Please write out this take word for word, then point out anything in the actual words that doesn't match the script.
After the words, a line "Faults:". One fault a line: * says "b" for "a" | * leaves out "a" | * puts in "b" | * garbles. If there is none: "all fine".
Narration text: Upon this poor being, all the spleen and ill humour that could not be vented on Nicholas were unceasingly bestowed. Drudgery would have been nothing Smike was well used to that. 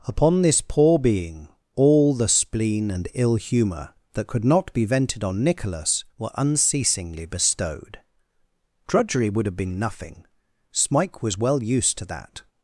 Upon this poor being, all the spleen and ill humour that could not be vented on Nicholas were unceasingly bestowed. Drudgery would have been nothing Smike was well used to that.
Faults:
all fine